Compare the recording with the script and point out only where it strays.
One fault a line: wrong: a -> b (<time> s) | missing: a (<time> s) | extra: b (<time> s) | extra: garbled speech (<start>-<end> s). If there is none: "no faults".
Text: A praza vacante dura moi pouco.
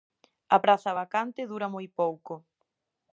no faults